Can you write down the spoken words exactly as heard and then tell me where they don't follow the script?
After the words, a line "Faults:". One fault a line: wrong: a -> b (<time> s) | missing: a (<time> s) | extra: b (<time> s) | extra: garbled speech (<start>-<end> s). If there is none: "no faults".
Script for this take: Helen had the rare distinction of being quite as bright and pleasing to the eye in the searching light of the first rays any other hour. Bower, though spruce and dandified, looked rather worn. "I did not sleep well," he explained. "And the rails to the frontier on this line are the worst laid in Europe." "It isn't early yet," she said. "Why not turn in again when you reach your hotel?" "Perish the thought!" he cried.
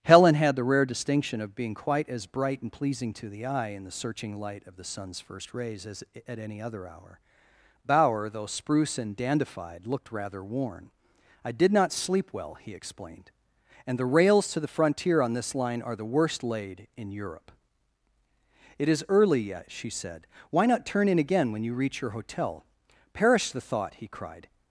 Helen had the rare distinction of being quite as bright and pleasing to the eye in the searching light of the sun's first rays as at any other hour. Bower, though spruce and dandified, looked rather worn. "I did not sleep well," he explained. "And the rails to the frontier on this line are the worst laid in Europe." "It is early yet," she said. "Why not turn in again when you reach your hotel?" "Perish the thought!" he cried.
Faults:
extra: sun's (4.8 s)
extra: as at (5.8 s)
wrong: isn't -> is (18.9 s)